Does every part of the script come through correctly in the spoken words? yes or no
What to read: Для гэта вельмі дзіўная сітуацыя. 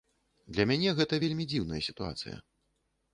no